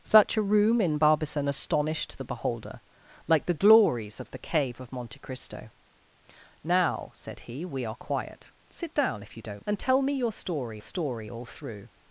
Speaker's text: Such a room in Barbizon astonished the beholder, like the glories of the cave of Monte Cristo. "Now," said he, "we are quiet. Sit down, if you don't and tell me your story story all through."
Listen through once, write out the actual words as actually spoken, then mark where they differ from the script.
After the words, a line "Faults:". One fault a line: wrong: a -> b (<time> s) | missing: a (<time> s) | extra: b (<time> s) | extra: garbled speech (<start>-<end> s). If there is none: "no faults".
Such a room in Barbizon astonished the beholder, like the glories of the cave of Monte Cristo. "Now," said he, "we are quiet. Sit down, if you don't and tell me your story story all through."
Faults:
no faults